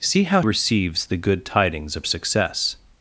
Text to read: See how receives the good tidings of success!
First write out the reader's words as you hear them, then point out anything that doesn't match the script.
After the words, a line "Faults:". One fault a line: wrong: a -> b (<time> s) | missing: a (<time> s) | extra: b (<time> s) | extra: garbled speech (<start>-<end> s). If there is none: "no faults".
See how receives the good tidings of success!
Faults:
no faults